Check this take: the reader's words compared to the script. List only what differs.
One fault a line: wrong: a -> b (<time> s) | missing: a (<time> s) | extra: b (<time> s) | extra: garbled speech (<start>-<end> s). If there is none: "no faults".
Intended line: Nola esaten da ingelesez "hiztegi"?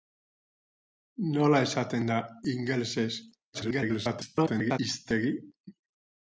extra: garbled speech (3.5-4.8 s)